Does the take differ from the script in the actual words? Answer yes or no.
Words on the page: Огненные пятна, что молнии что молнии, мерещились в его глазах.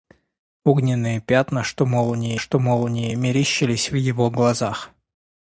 no